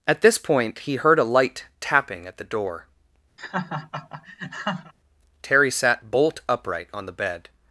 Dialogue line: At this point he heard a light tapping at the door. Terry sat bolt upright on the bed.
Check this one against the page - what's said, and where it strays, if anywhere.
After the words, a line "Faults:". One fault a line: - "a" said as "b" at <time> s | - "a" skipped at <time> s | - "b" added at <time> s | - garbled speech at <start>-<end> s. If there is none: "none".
At this point he heard a light tapping at the door. Terry sat bolt upright on the bed.
Faults:
none